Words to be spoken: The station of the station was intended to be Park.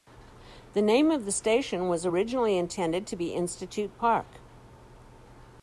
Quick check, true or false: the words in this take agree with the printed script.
false